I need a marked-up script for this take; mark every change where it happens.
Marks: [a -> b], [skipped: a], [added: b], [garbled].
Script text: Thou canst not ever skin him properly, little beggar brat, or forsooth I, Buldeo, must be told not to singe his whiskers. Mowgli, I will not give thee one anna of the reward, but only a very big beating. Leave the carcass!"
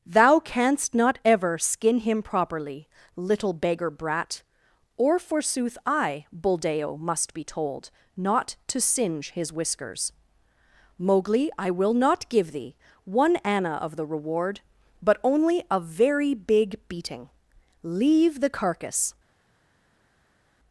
Thou canst not ever skin him properly, little beggar brat, or forsooth I, Buldeo, must be told not to singe his whiskers. Mowgli, I will not give thee one anna of the reward, but only a very big beating. Leave the carcass!"